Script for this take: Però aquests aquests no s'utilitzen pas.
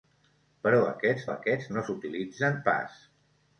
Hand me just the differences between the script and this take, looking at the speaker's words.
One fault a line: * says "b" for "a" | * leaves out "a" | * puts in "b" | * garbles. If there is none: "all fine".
all fine